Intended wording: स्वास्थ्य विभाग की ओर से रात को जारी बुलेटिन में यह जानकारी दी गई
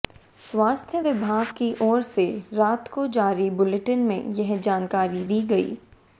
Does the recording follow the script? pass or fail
pass